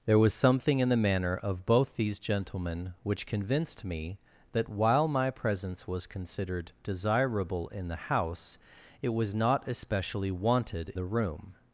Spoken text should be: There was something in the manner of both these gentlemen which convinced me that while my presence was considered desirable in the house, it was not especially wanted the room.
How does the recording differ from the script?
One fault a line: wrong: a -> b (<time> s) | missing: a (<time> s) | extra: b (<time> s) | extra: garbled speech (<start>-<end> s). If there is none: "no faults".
no faults